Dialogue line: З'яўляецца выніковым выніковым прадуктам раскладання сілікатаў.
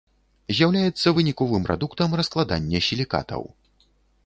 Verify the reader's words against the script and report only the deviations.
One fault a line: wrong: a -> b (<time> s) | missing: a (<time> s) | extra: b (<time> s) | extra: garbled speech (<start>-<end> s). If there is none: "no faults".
missing: выніковым (1.7 s)